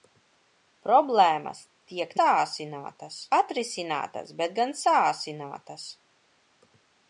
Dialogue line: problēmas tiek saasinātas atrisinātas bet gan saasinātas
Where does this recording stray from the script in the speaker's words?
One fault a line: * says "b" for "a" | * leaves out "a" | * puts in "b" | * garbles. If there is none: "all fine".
all fine